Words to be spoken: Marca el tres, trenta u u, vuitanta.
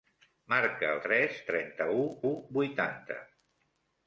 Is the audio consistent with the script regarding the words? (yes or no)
yes